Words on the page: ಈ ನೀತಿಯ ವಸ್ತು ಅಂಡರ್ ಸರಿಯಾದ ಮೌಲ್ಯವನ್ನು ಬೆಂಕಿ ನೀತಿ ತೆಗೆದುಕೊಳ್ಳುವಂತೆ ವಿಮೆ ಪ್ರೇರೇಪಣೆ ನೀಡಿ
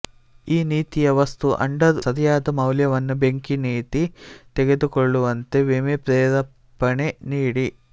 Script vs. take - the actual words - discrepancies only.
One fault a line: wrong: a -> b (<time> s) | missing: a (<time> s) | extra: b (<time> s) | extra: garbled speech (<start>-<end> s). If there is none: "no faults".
no faults